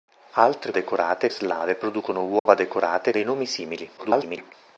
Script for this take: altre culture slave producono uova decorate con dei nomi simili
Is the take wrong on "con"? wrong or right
wrong